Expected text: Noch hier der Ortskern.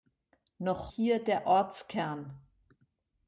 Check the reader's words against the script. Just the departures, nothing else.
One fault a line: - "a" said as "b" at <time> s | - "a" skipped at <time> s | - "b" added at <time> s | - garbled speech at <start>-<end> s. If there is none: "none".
none